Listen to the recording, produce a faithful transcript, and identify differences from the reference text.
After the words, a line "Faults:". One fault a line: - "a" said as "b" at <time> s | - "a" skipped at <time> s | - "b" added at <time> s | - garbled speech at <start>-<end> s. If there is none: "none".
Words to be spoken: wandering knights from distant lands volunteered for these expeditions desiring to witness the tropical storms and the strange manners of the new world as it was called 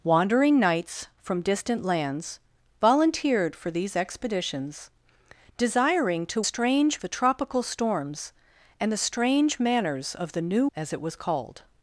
wandering knights from distant lands volunteered for these expeditions desiring to strange the tropical storms and the strange manners of the new as it was called
Faults:
- "witness" said as "strange" at 6.4 s
- "world" skipped at 10.7 s